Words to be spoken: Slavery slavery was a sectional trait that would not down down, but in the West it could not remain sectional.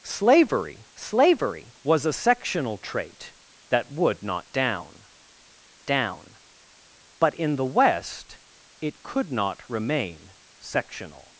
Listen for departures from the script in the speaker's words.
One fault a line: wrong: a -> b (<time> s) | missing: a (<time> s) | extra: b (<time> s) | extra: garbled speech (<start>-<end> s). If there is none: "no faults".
no faults